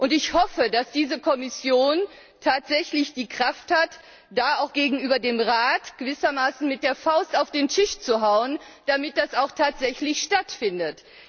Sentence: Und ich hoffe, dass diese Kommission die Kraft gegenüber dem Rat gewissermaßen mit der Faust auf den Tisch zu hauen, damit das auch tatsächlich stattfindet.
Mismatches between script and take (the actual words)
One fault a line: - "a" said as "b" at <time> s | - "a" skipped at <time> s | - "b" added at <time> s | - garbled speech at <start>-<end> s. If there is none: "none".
- "tatsächlich" added at 2.4 s
- "hat da auch" added at 3.7 s